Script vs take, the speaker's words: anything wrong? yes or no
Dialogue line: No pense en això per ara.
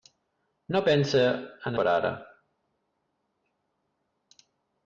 yes